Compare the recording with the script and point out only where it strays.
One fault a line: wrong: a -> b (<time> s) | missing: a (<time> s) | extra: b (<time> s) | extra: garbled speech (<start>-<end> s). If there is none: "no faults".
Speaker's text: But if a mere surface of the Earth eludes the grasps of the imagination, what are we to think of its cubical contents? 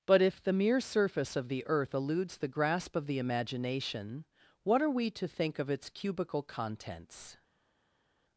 wrong: a -> the (0.4 s)
wrong: grasps -> grasp (2.5 s)